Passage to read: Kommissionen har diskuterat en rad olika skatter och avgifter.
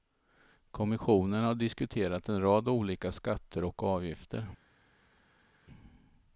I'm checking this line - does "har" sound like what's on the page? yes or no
yes